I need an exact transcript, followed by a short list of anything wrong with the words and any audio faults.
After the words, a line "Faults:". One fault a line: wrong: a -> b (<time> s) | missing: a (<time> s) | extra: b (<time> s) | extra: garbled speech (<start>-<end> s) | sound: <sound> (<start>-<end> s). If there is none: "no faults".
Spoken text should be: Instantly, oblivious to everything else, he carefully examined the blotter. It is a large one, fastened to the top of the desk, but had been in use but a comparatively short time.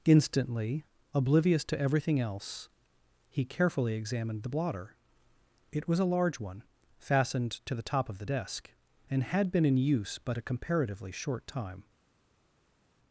Instantly, oblivious to everything else, he carefully examined the blotter. It was a large one, fastened to the top of the desk, and had been in use but a comparatively short time.
Faults:
wrong: is -> was (5.9 s)
wrong: but -> and (9.1 s)